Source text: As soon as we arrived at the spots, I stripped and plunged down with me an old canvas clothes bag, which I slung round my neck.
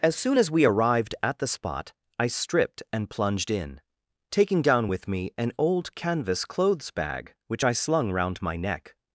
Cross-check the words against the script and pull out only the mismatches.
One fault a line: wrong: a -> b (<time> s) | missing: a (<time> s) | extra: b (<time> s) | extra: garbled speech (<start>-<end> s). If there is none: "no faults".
wrong: spots -> spot (1.5 s)
extra: in taking (3.5 s)